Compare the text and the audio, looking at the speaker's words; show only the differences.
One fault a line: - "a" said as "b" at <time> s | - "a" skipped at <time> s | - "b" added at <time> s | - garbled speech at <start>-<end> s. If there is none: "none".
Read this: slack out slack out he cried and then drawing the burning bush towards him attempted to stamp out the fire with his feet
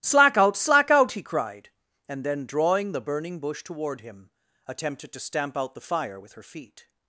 - "towards" said as "toward" at 3.6 s
- "his" said as "her" at 6.3 s